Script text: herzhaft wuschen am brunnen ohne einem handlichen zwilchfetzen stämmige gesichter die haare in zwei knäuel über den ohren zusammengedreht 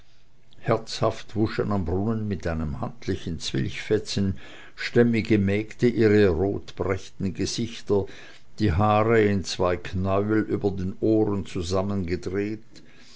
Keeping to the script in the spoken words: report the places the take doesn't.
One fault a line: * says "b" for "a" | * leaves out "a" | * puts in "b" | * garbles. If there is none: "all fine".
* says "mit" for "ohne"
* puts in "mägde ihre rotbrächten"